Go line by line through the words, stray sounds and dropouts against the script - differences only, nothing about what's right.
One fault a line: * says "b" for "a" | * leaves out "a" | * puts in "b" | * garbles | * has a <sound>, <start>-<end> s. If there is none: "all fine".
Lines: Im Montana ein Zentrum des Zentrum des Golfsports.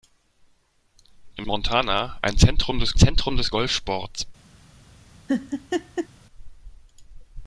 * has a laugh, 5.3-6.1 s